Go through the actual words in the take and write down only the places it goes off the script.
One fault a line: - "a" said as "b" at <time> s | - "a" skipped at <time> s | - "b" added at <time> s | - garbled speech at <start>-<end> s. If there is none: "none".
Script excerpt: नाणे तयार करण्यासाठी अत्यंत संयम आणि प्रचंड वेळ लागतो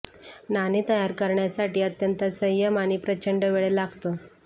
none